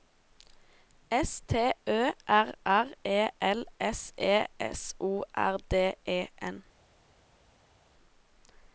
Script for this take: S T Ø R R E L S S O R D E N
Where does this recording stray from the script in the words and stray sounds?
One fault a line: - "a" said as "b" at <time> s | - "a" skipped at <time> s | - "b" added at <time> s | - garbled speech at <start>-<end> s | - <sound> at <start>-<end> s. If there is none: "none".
- "E" added at 4.2 s